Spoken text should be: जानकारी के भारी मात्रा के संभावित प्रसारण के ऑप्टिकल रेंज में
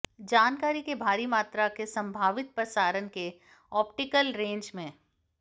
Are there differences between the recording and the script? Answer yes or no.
no